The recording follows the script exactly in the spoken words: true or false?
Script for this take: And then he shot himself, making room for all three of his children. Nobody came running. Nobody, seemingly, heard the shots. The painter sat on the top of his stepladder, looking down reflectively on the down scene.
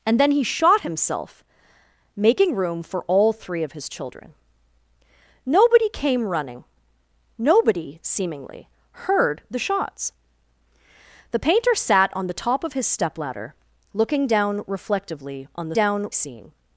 true